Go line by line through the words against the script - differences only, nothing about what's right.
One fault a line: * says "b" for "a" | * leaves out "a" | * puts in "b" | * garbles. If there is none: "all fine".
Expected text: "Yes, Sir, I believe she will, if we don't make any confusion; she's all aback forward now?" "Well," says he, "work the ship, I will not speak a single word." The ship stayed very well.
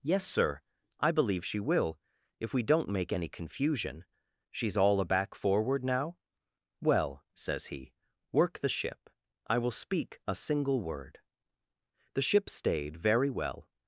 * leaves out "not"